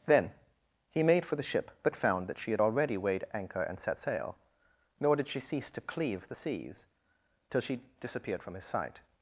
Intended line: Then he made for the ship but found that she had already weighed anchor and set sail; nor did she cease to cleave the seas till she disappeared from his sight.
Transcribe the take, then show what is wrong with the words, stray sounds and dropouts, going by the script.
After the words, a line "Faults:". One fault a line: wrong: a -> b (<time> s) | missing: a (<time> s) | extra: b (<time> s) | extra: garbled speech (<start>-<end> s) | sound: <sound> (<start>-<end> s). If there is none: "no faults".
Then he made for the ship but found that she had already weighed anchor and set sail; nor did she cease to cleave the seas till she disappeared from his sight.
Faults:
no faults